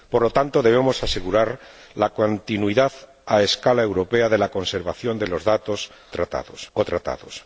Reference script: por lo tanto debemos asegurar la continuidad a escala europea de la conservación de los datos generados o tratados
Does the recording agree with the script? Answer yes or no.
no